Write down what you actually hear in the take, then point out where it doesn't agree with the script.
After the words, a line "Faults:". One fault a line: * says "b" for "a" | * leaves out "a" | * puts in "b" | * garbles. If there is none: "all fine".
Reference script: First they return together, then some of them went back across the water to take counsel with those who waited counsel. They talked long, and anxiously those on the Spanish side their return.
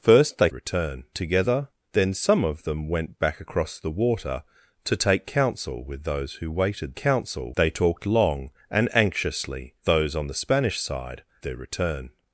First they return together, then some of them went back across the water to take counsel with those who waited counsel. They talked long, and anxiously those on the Spanish side their return.
Faults:
all fine